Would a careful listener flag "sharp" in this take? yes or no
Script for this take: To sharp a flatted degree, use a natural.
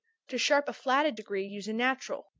no